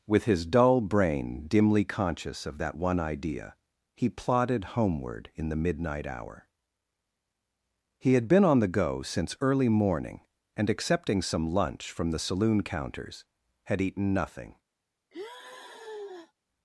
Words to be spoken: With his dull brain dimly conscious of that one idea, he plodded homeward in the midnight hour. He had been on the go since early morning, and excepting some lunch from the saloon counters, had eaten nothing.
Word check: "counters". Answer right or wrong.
right